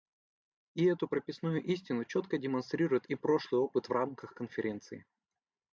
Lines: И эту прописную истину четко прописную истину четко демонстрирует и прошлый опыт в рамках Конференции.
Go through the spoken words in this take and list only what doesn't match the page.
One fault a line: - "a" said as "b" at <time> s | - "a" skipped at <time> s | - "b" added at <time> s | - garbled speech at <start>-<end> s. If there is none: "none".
- "прописную истину четко" skipped at 2.4 s